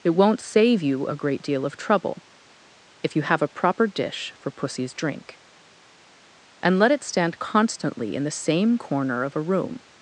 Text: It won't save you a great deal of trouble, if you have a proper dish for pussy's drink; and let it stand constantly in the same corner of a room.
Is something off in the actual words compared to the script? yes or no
no